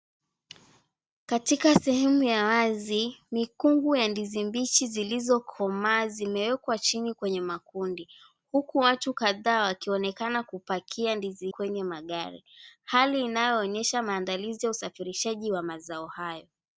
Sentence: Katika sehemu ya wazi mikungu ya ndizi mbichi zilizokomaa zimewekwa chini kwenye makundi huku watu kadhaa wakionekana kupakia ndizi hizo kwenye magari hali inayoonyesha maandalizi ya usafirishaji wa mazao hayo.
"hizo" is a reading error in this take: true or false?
true